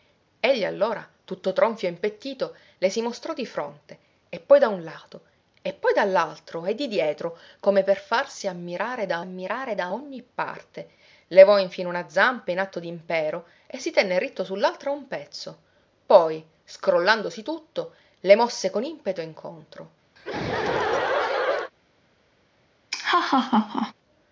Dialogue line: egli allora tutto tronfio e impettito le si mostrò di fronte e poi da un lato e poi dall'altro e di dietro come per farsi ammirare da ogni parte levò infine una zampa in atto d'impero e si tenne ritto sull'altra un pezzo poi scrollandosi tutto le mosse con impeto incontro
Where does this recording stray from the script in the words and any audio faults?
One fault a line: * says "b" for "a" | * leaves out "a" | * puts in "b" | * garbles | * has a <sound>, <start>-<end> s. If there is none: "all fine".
* puts in "ammirare da"
* has a laugh, 20.2-21.7 s
* has a laugh, 22.9-23.9 s